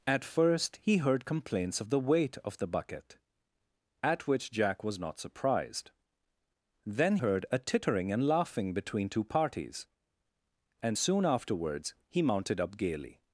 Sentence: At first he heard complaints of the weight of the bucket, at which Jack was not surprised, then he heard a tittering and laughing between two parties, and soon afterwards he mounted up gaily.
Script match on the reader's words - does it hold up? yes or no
no